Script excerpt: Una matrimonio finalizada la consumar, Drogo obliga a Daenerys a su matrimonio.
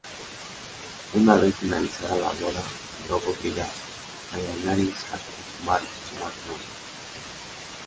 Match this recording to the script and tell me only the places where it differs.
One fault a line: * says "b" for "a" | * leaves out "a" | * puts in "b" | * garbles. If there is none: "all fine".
* says "vez" for "matrimonio"
* says "boda" for "consumar"
* puts in "consumar"